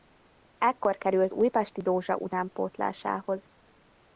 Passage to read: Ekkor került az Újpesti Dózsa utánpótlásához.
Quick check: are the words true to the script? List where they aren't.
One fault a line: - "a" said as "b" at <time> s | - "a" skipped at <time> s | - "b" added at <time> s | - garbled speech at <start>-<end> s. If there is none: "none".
- "az" skipped at 1.3 s